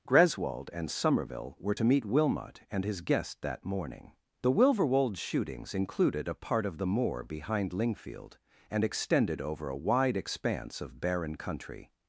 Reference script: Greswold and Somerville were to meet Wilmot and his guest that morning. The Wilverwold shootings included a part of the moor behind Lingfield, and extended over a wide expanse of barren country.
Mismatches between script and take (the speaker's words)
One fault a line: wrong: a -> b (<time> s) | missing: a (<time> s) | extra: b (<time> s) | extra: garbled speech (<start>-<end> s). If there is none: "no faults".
no faults